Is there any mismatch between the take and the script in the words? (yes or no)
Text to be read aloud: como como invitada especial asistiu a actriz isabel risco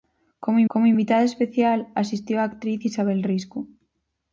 no